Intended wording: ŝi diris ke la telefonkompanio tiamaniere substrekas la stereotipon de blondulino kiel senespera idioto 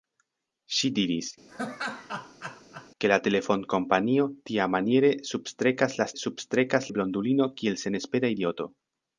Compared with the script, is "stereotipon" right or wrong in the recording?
wrong